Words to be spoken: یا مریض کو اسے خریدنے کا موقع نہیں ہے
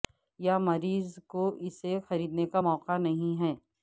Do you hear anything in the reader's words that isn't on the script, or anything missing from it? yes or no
no